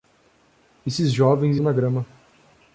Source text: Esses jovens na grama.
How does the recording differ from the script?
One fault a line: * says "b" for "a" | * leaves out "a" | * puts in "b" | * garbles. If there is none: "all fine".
all fine